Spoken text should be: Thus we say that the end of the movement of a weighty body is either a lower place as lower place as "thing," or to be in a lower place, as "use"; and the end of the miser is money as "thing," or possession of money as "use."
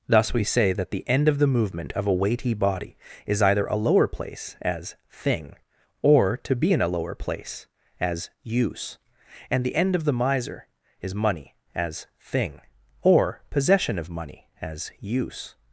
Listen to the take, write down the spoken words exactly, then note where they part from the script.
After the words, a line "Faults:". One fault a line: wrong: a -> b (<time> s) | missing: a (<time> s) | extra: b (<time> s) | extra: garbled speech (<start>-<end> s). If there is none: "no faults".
Thus we say that the end of the movement of a weighty body is either a lower place as "thing," or to be in a lower place, as "use"; and the end of the miser is money as "thing," or possession of money as "use."
Faults:
missing: lower place as (5.0 s)